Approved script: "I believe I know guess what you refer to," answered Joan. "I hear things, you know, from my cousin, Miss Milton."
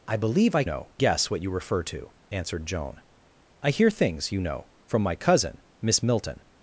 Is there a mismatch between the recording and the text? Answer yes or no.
no